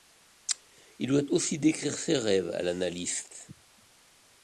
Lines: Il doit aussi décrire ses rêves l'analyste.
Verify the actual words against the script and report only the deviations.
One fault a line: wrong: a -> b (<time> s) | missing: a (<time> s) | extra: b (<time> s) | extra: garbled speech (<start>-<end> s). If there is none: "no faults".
extra: à (2.5 s)